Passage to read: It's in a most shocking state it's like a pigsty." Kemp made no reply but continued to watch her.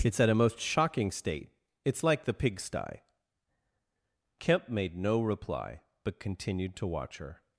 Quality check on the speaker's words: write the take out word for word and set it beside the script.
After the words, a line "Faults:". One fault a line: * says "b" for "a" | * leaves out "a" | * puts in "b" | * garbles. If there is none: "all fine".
It's at a most shocking state it's like the pigsty." Kemp made no reply but continued to watch her.
Faults:
* says "at" for "in"
* says "the" for "a"